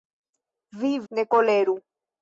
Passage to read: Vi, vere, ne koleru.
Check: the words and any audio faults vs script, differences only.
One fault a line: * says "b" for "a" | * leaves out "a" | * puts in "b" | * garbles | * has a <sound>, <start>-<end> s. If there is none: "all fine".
* leaves out "vere"